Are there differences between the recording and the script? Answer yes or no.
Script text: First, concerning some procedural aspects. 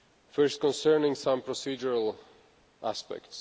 no